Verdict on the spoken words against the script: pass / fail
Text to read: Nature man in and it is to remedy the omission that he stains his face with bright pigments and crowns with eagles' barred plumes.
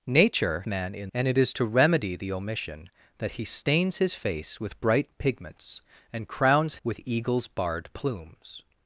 pass